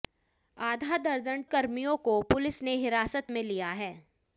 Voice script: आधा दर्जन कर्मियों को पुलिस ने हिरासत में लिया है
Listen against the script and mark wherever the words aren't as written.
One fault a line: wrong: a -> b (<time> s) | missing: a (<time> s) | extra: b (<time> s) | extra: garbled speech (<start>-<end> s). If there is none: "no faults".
no faults